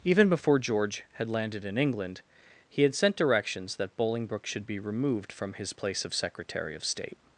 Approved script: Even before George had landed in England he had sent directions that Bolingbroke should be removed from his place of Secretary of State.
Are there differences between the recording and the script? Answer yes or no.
no